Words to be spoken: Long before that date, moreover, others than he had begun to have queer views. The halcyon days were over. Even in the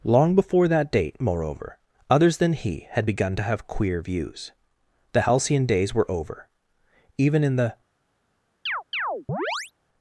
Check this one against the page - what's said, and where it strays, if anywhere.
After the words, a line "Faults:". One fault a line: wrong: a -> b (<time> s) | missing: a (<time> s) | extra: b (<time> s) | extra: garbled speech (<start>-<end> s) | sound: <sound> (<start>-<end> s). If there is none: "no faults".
Long before that date, moreover, others than he had begun to have queer views. The halcyon days were over. Even in the
Faults:
sound: chirp (8.7-9.7 s)